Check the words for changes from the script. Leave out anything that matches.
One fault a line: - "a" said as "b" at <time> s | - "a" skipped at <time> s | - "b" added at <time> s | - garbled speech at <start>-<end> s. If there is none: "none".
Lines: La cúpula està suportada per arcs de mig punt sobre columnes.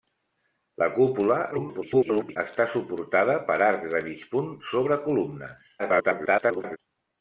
- garbled speech at 1.5-2.4 s
- garbled speech at 5.8-6.8 s